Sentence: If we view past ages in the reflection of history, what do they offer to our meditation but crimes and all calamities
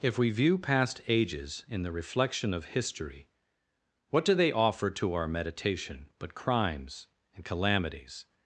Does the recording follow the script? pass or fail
fail